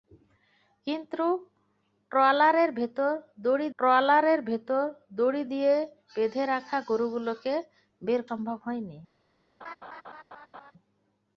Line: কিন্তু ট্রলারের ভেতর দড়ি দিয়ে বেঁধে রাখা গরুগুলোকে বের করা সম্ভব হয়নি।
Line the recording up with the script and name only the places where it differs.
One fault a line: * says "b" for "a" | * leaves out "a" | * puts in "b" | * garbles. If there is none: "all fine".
* puts in "ট্রলারের ভেতর দড়ি"
* leaves out "করা"